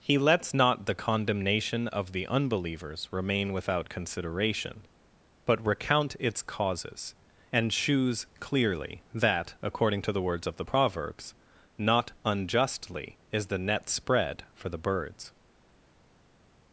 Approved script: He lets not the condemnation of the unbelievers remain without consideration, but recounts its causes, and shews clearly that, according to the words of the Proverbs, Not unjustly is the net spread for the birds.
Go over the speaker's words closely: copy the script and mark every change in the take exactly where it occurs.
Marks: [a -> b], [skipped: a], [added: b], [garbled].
He lets not the condemnation of the unbelievers remain without consideration, but [recounts -> recount] its causes, and shews clearly that, according to the words of the Proverbs, Not unjustly is the net spread for the birds.